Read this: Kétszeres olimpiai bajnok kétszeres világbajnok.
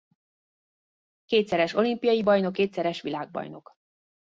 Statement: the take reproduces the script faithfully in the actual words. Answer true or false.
true